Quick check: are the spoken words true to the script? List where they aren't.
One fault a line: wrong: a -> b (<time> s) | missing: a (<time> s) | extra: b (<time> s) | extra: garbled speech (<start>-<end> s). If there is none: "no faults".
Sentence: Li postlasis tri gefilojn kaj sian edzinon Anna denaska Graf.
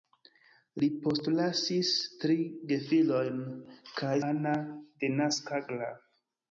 missing: sian edzinon (4.2 s)